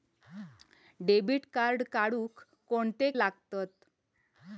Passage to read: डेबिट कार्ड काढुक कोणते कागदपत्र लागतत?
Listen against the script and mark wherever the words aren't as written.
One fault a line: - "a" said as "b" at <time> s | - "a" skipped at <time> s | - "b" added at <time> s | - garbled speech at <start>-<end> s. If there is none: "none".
- "कागदपत्र" skipped at 3.1 s